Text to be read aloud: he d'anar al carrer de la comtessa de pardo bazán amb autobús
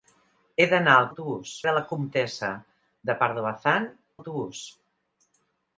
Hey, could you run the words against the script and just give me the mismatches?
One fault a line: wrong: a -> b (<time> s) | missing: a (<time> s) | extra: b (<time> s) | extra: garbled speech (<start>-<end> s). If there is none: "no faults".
wrong: carrer -> autobús (1.1 s)
missing: amb (3.9 s)